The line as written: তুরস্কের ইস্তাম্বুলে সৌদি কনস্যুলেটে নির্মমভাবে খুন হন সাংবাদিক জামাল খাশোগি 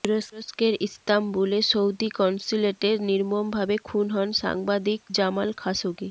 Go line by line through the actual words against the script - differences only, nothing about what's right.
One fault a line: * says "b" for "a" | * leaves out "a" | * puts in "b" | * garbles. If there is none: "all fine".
all fine